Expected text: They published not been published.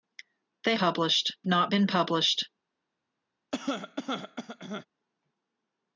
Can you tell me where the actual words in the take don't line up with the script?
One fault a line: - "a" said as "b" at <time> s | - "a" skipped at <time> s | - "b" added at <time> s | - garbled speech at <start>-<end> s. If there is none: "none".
none